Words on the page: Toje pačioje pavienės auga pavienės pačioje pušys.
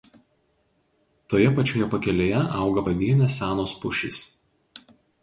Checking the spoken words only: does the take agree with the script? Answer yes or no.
no